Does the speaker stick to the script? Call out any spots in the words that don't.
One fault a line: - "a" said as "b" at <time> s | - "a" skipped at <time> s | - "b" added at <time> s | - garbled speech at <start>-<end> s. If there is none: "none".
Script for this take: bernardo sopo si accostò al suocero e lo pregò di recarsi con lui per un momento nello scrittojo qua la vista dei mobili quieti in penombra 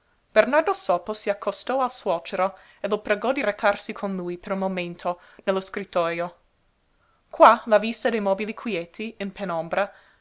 none